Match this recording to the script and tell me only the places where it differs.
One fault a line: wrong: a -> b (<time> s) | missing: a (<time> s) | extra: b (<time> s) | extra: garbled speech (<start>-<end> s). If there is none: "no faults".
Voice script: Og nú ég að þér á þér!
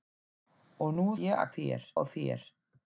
no faults